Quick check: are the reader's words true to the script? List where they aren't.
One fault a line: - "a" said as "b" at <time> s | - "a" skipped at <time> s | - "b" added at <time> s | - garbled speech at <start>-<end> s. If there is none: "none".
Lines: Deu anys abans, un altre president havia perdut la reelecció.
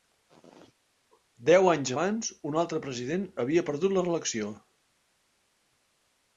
none